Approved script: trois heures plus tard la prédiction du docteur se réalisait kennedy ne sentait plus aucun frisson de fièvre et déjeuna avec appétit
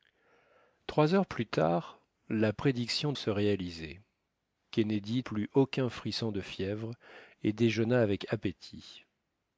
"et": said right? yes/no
yes